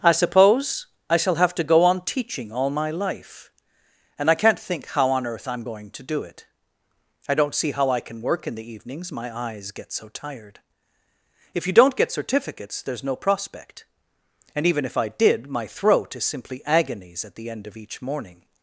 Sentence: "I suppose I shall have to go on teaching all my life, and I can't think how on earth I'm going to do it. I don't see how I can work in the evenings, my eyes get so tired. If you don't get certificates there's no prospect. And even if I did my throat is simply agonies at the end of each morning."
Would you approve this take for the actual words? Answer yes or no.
yes